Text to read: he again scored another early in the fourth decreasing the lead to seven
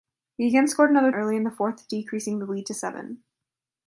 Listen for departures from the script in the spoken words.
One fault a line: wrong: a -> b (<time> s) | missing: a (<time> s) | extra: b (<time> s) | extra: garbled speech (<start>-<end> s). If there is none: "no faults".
no faults